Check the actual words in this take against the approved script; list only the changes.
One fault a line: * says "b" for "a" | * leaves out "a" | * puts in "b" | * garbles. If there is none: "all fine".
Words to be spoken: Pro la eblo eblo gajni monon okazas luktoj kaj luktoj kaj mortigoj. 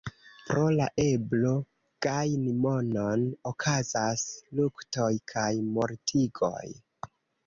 * leaves out "eblo"
* leaves out "luktoj kaj"